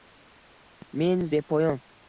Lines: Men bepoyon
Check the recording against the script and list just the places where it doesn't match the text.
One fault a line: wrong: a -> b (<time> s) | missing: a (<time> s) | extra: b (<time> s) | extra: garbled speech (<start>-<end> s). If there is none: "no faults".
no faults